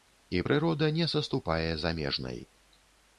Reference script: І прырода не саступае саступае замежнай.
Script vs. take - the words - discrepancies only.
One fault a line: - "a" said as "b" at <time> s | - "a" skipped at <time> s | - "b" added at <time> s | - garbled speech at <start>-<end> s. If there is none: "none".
- "саступае" skipped at 1.7 s